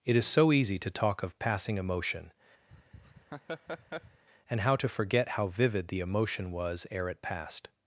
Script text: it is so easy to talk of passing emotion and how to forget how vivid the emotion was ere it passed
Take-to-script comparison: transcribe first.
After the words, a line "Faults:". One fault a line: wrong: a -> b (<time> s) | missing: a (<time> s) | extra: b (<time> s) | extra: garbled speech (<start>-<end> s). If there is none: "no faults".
it is so easy to talk of passing emotion and how to forget how vivid the emotion was ere it passed
Faults:
no faults